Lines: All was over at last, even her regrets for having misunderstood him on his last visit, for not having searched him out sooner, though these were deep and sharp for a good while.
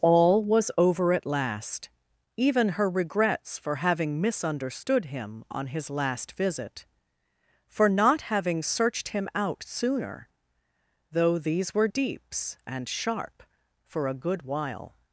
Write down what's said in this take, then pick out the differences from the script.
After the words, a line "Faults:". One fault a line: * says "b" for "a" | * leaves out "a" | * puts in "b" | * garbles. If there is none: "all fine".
All was over at last, even her regrets for having misunderstood him on his last visit, for not having searched him out sooner, though these were deeps and sharp for a good while.
Faults:
* says "deeps" for "deep"